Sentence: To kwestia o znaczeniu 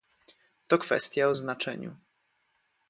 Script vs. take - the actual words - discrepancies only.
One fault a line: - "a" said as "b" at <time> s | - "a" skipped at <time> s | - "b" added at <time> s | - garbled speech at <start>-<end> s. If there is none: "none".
none